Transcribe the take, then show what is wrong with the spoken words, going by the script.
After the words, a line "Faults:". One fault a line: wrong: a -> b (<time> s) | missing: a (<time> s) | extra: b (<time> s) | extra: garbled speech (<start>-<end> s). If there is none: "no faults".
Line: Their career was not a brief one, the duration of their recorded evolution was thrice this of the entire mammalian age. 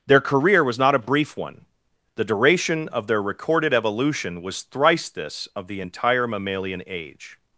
Their career was not a brief one, the duration of their recorded evolution was thrice this of the entire mammalian age.
Faults:
no faults